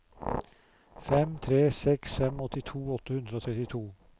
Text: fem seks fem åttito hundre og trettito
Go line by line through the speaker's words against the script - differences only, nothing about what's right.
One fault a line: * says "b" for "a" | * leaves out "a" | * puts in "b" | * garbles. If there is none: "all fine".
* puts in "tre"
* puts in "åtte"